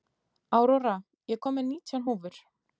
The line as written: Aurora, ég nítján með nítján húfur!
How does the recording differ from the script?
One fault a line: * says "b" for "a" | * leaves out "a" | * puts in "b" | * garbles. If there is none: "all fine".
* says "kom" for "nítján"